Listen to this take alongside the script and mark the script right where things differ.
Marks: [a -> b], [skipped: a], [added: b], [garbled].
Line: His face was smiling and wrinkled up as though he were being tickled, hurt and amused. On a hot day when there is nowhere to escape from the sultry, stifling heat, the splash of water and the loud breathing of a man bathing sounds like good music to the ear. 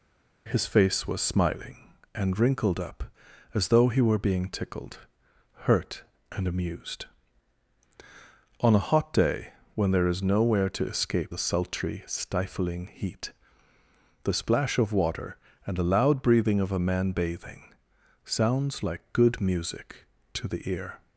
His face was smiling and wrinkled up as though he were being tickled, hurt and amused. On a hot day when there is nowhere to escape [skipped: from] the sultry, stifling heat, the splash of water and the loud breathing of a man bathing sounds like good music to the ear.